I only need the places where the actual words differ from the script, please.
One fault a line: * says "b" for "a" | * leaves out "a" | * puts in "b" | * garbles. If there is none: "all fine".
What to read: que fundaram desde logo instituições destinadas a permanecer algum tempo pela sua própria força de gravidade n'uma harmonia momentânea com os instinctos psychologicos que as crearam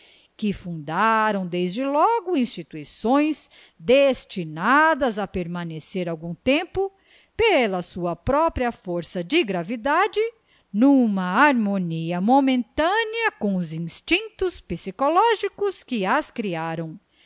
all fine